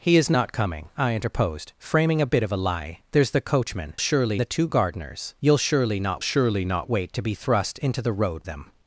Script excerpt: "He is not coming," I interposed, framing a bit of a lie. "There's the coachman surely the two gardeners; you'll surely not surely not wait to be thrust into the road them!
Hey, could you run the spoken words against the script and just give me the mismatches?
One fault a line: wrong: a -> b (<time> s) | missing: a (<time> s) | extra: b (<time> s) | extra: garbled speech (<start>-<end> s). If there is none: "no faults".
no faults